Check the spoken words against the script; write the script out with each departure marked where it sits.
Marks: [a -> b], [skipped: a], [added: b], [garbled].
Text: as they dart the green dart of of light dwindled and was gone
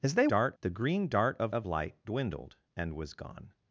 as they dart the green dart of of light dwindled and was gone